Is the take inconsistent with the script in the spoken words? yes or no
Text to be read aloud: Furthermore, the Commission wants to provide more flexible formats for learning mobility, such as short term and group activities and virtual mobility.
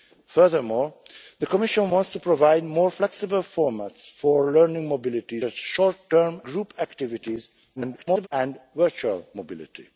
yes